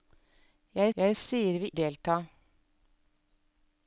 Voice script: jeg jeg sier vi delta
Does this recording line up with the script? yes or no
yes